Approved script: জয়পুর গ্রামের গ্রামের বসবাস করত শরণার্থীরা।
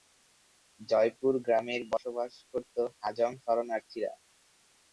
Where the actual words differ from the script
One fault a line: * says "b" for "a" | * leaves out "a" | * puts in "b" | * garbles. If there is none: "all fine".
* leaves out "গ্রামের"
* puts in "হাজং"